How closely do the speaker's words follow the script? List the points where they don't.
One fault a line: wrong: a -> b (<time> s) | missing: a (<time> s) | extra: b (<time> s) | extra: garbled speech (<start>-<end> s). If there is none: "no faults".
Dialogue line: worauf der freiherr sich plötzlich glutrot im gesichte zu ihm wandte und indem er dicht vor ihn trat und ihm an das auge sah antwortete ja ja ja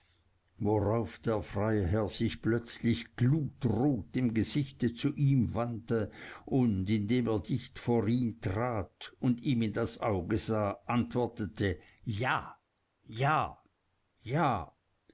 wrong: an -> in (9.6 s)